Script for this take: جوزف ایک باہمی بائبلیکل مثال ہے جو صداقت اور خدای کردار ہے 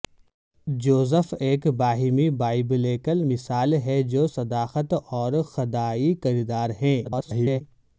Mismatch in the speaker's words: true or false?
true